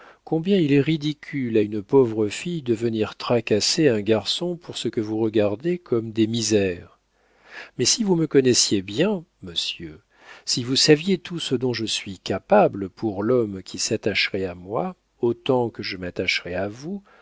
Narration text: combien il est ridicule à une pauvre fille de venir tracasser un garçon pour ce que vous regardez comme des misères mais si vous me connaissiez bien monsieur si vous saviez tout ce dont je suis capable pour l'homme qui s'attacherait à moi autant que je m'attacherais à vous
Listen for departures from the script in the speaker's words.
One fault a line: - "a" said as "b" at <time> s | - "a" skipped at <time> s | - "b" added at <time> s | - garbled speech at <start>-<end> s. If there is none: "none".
none